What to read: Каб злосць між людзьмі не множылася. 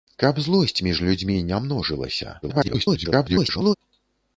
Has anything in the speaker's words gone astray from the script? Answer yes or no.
yes